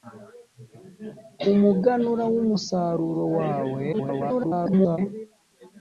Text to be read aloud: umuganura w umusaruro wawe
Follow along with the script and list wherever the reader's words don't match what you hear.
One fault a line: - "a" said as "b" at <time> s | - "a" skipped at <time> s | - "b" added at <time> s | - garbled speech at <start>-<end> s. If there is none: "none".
- garbled speech at 3.9-5.0 s